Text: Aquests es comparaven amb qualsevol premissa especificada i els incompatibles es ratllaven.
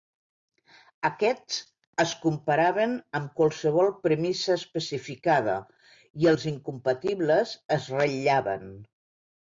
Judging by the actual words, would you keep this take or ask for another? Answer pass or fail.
pass